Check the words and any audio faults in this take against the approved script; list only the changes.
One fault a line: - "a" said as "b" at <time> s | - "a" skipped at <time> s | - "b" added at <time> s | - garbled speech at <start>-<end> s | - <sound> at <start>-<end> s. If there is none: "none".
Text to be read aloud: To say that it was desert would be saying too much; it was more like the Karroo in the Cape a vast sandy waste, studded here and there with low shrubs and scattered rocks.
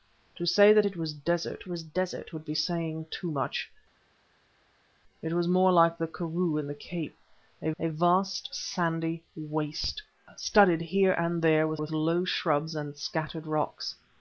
- "was desert" added at 1.7 s
- "a" added at 7.8 s
- "with" added at 11.7 s